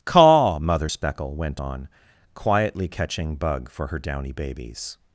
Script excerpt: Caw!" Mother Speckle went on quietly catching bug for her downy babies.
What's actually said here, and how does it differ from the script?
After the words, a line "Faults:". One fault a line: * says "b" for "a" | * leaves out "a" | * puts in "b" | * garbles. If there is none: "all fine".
Caw!" Mother Speckle went on quietly catching bug for her downy babies.
Faults:
all fine